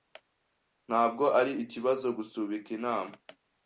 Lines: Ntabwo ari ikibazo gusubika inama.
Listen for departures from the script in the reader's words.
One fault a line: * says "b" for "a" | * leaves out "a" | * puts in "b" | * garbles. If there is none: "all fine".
all fine